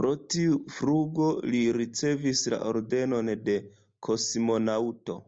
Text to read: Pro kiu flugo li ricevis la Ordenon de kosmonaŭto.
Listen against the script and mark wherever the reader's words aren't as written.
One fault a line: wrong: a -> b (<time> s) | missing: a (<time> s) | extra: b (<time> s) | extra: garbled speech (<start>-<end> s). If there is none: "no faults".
wrong: kiu -> tiu (0.3 s)